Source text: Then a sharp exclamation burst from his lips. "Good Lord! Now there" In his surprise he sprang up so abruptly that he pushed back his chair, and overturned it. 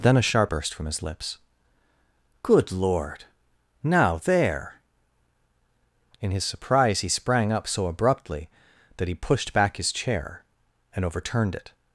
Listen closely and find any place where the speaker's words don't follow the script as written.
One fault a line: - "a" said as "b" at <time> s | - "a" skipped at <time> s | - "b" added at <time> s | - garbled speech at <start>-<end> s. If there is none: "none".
- "exclamation" skipped at 0.5 s